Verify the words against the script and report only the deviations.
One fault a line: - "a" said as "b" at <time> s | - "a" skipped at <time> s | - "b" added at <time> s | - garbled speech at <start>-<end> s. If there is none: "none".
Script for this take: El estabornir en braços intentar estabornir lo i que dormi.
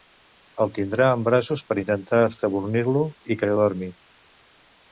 - "estabornir" said as "tindrà" at 0.8 s
- "per" added at 1.7 s